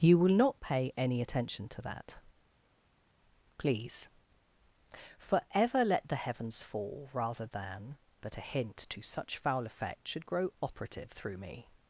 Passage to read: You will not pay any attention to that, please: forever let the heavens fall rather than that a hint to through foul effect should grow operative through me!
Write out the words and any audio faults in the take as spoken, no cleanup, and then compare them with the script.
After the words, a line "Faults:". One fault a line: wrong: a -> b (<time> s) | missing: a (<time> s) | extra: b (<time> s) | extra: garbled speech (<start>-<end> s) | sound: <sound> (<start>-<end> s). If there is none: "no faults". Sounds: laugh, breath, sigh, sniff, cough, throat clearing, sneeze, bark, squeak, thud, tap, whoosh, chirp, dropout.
You will not pay any attention to that, please: forever let the heavens fall rather than that a hint to such foul effect should grow operative through me!
Faults:
wrong: through -> such (9.0 s)